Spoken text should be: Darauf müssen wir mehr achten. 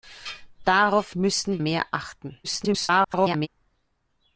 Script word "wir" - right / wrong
wrong